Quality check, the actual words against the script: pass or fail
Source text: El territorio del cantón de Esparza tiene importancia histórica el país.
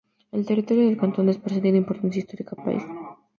pass